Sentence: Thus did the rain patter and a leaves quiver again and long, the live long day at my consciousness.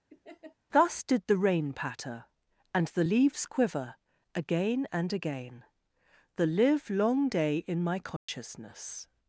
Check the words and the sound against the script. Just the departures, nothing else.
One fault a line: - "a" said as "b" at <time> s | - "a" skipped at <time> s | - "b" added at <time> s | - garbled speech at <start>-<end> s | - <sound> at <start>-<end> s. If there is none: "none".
- laugh at 0.1-0.6 s
- "a" said as "the" at 2.9 s
- "long" said as "again" at 5.1 s
- "at" said as "in" at 7.7 s
- dropout at 8.2-8.3 s